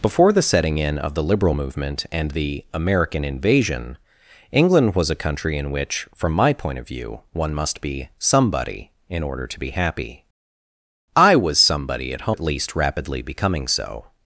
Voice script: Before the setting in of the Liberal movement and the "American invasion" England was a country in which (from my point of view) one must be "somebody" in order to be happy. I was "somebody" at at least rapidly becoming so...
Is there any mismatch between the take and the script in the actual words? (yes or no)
no